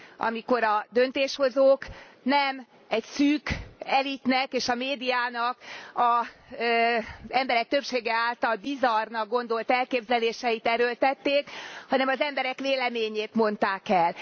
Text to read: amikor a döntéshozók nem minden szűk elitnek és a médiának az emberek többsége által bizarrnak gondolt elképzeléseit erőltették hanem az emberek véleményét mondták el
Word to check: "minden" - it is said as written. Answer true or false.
false